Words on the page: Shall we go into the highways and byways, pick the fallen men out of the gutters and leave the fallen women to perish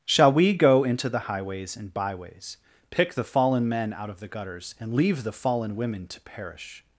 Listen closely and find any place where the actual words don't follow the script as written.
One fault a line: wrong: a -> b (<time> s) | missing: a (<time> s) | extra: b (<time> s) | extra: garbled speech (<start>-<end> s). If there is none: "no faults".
no faults